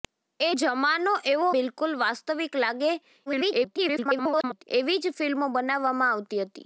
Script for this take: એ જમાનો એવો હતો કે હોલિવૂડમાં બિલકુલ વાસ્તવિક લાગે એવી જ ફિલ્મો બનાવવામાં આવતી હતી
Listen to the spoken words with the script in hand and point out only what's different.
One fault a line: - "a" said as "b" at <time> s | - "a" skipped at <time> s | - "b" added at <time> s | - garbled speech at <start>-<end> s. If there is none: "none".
- "હતો કે હોલિવૂડમાં" skipped at 1.5 s
- garbled speech at 3.3-4.6 s